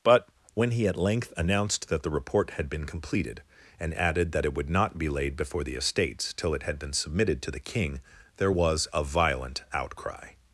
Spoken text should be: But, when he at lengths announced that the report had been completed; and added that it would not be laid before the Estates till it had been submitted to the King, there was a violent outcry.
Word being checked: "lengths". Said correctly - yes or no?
no